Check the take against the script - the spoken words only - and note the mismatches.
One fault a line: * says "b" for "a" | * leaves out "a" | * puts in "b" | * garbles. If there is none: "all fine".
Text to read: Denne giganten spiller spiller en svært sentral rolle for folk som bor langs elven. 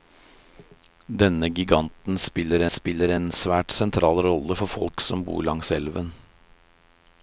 all fine